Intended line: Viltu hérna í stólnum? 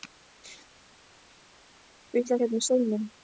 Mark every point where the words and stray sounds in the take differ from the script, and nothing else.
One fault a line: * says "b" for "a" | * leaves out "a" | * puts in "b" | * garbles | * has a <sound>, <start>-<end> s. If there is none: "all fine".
all fine